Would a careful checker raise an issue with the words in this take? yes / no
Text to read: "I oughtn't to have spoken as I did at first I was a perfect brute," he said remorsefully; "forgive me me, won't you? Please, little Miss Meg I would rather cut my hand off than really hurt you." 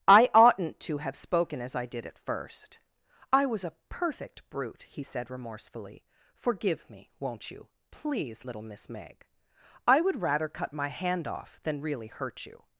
yes